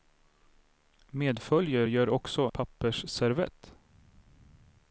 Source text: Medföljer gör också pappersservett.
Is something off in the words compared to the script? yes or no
no